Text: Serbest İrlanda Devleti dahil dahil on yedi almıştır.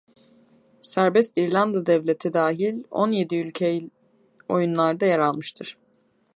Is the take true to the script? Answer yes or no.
no